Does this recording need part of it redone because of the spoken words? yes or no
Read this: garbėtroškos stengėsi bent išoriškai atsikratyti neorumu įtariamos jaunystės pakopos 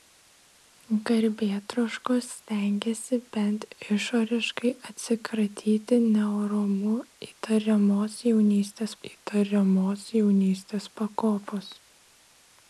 yes